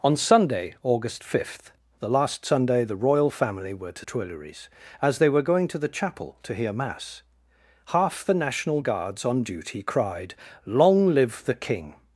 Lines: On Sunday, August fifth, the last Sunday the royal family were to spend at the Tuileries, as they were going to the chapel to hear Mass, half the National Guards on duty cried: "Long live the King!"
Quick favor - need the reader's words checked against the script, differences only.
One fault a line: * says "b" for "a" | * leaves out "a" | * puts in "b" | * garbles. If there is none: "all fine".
* leaves out "spend at the"